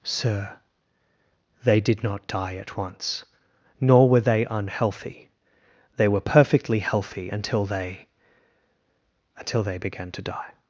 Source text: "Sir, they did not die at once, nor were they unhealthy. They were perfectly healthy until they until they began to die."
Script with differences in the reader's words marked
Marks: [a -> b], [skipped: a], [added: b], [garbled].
"Sir, they did not die at once, nor were they unhealthy. They were perfectly healthy until they until they began to die."